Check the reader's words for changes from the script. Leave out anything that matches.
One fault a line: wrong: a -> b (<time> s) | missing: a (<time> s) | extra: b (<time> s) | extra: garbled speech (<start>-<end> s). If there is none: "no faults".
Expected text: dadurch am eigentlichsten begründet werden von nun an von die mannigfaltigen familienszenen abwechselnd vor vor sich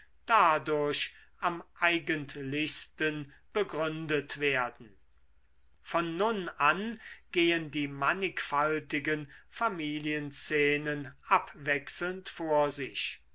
wrong: von -> gehen (7.3 s)
missing: vor (12.7 s)